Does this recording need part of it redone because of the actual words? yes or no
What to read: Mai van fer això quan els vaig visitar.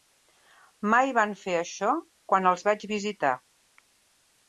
no